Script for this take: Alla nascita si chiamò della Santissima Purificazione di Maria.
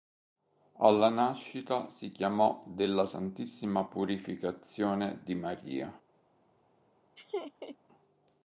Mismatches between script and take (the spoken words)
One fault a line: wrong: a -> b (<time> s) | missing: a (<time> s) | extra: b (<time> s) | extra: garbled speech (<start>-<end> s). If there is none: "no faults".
no faults